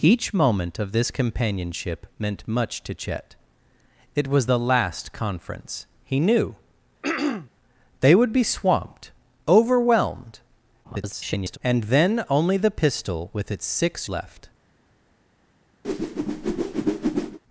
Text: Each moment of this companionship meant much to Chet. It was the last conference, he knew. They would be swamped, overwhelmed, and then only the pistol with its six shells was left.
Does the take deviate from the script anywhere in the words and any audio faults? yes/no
yes